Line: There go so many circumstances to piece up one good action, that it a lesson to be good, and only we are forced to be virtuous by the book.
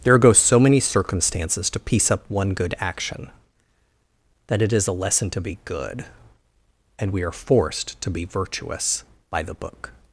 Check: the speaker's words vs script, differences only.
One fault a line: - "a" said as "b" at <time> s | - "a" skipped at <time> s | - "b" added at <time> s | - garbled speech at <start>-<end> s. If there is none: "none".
- "is" added at 4.7 s
- "only" skipped at 7.1 s